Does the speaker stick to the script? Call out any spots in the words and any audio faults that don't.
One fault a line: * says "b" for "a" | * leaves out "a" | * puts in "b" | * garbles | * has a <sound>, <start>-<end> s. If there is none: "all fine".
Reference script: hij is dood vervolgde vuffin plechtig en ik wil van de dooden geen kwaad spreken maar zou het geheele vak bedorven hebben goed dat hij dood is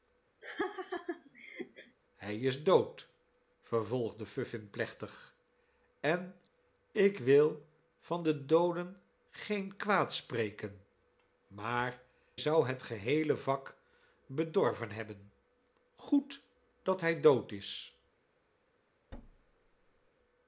* has a laugh, 0.4-2.0 s
* has a thud, 19.1-20.1 s